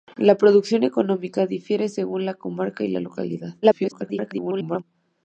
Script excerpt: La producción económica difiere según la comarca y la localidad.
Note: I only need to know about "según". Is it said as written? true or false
true